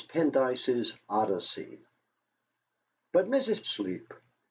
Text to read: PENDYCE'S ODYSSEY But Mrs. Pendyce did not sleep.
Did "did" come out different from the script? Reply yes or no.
yes